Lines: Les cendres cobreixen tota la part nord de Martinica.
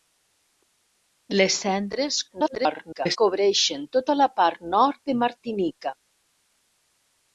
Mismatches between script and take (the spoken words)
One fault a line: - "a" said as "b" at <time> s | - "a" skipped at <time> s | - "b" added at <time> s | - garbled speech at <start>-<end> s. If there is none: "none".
- garbled speech at 2.3-3.2 s